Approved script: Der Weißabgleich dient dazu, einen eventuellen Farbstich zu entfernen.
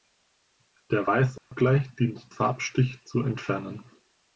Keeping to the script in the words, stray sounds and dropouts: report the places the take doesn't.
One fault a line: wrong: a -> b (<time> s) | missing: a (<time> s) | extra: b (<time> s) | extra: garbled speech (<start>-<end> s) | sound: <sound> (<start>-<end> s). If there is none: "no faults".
sound: dropout (1.4-1.5 s)
missing: dazu einen eventuellen (2.3 s)